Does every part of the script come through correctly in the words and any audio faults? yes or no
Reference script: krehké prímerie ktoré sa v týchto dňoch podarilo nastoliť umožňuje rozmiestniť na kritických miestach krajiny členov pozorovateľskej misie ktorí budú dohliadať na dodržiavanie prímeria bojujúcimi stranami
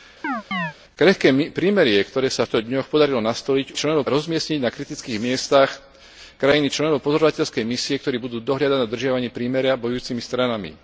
no